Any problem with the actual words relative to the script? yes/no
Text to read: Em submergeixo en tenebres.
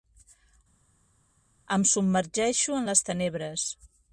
yes